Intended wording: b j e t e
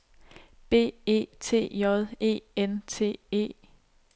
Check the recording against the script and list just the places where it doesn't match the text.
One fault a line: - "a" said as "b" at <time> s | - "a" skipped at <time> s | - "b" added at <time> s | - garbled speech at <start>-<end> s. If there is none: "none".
- "e t" added at 1.1 s
- "n" added at 2.5 s